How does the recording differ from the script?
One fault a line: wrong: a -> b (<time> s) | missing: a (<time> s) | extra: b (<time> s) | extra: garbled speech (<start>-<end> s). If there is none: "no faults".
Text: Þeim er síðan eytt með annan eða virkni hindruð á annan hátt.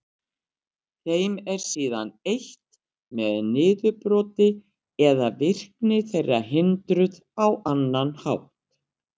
wrong: annan -> niðurbroti (3.5 s)
extra: þeirra (6.1 s)